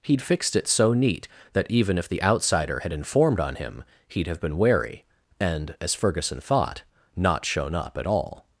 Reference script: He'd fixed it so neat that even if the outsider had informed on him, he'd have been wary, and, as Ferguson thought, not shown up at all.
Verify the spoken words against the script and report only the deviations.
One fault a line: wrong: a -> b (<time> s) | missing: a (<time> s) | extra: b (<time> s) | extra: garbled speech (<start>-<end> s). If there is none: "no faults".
no faults